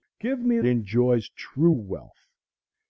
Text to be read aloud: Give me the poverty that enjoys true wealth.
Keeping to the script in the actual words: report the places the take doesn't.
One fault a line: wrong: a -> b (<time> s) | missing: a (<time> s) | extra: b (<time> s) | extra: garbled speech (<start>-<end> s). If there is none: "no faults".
missing: the poverty that (0.6 s)